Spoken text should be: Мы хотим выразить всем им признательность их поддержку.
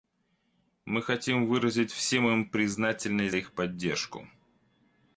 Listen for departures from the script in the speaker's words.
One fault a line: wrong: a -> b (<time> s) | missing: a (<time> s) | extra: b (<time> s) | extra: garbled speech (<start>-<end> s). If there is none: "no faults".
no faults